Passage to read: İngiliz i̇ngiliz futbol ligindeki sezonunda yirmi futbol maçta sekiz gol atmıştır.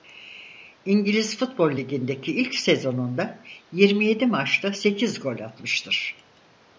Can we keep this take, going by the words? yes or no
no